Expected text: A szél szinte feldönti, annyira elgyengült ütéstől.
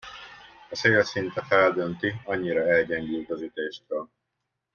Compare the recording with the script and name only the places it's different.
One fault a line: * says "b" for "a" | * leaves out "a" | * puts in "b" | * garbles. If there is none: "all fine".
* puts in "az"